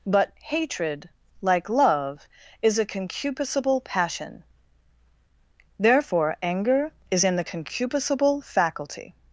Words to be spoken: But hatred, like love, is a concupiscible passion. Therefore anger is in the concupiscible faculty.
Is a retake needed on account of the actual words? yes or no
no